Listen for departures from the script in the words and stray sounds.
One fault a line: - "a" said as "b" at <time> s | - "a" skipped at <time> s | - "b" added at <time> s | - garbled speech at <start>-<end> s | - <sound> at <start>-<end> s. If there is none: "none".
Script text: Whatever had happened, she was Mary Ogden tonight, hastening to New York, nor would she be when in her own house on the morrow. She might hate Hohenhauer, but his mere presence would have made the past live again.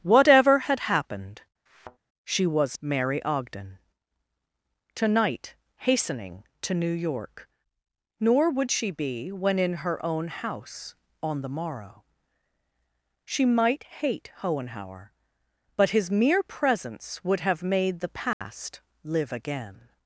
- thud at 1.7-2.0 s
- dropout at 18.3-18.4 s